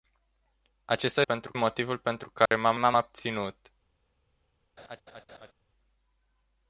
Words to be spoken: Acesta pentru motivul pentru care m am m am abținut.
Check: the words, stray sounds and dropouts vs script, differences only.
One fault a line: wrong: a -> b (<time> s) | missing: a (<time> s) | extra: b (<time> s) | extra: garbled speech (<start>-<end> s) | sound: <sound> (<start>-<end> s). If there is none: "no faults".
sound: dropout (2.5-2.5 s)
sound: laugh (4.8-5.5 s)